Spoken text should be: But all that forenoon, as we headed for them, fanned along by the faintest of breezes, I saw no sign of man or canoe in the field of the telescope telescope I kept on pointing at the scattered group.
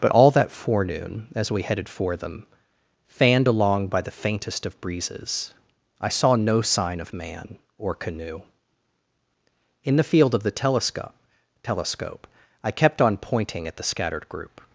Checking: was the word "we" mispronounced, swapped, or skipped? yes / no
no